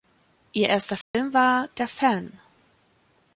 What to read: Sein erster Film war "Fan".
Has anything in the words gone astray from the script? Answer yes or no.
yes